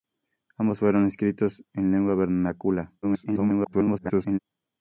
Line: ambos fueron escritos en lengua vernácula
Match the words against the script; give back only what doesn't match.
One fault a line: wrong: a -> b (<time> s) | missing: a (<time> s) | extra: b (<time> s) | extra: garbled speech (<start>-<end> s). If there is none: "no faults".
extra: garbled speech (3.0-4.4 s)